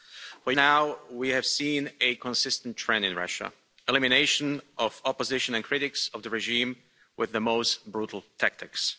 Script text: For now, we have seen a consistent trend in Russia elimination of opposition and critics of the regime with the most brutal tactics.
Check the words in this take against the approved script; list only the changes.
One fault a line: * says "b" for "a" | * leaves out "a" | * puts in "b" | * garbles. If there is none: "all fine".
all fine